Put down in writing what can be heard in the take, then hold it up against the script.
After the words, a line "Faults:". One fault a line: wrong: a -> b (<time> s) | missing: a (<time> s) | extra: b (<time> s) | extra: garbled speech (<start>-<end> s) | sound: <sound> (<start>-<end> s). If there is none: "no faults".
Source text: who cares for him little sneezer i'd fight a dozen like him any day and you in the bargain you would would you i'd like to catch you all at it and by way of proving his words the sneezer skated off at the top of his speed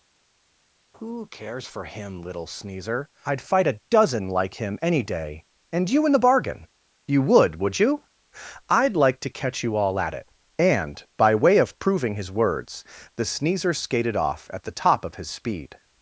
who cares for him little sneezer i'd fight a dozen like him any day and you in the bargain you would would you i'd like to catch you all at it and by way of proving his words the sneezer skated off at the top of his speed
Faults:
no faults